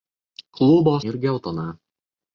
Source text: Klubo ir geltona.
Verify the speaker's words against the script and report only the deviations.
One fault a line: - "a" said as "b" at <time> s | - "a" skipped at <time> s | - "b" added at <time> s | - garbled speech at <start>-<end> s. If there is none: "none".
none